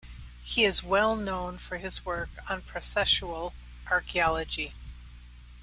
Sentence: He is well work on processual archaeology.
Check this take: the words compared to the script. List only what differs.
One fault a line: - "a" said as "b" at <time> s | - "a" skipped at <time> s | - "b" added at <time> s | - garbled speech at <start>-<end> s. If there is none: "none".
- "known for his" added at 1.1 s